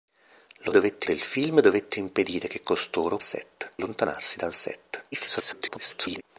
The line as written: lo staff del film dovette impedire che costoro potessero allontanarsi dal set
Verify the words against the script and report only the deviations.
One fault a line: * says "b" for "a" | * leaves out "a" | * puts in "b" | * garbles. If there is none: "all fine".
* says "dovette" for "staff"
* says "set" for "potessero"
* garbles